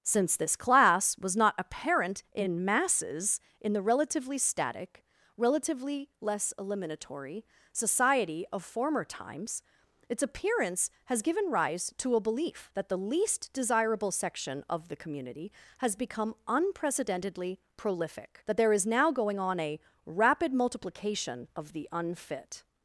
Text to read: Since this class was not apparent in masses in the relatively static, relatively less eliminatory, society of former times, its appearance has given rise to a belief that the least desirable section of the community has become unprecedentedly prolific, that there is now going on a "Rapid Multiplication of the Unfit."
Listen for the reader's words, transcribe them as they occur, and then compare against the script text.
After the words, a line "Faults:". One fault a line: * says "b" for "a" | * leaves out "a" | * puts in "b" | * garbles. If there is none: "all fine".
Since this class was not apparent in masses in the relatively static, relatively less eliminatory, society of former times, its appearance has given rise to a belief that the least desirable section of the community has become unprecedentedly prolific, that there is now going on a "Rapid Multiplication of the Unfit."
Faults:
all fine